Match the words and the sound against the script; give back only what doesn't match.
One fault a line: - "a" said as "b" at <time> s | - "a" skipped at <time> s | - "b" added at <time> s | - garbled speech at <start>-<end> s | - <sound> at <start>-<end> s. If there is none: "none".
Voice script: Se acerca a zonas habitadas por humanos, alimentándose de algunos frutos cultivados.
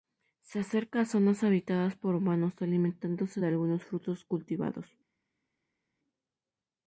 none